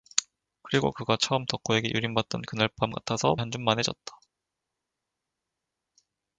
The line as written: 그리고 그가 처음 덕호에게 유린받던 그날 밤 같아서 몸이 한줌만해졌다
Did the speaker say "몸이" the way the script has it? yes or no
no